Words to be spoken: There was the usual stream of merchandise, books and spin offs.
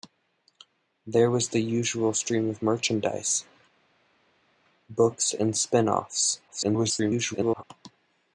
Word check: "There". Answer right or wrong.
right